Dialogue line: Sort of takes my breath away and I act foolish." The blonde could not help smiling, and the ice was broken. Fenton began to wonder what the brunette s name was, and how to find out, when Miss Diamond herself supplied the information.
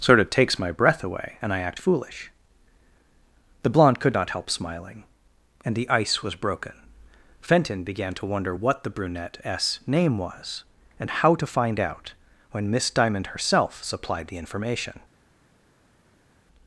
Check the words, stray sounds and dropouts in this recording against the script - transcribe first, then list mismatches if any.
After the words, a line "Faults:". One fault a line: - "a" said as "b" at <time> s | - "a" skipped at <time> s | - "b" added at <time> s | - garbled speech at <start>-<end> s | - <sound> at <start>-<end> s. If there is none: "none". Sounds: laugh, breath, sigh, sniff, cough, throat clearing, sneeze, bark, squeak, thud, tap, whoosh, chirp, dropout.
Sort of takes my breath away and I act foolish." The blonde could not help smiling, and the ice was broken. Fenton began to wonder what the brunette s name was, and how to find out, when Miss Diamond herself supplied the information.
Faults:
none